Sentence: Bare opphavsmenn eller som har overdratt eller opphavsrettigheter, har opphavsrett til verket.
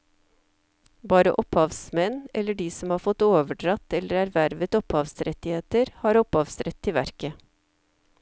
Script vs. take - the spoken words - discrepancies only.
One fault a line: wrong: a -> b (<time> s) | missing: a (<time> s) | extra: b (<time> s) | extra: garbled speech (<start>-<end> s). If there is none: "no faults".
extra: de (2.6 s)
extra: fått (3.1 s)
extra: ervervet (4.2 s)